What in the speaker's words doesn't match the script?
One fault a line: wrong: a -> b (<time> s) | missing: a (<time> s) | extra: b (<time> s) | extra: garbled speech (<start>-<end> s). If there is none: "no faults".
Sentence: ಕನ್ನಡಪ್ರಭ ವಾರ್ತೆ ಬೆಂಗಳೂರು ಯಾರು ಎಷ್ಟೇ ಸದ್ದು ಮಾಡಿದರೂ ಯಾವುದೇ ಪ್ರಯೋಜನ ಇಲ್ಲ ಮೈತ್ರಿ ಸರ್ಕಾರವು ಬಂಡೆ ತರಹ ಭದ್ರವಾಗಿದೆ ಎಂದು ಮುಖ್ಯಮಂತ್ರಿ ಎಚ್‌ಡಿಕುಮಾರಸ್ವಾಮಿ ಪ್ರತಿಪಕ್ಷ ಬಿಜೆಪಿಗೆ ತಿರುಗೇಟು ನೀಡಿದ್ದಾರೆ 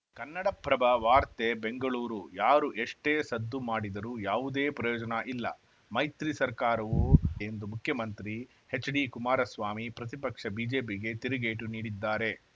missing: ಬಂಡೆ ತರಹ ಭದ್ರವಾಗಿದೆ (7.0 s)